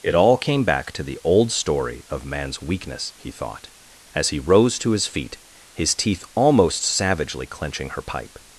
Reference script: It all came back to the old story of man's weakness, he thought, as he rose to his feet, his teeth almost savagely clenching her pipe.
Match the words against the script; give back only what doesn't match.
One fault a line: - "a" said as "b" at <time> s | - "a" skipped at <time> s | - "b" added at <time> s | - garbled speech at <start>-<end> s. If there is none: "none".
none